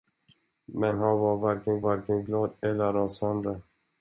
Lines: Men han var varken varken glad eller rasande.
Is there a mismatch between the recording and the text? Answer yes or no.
no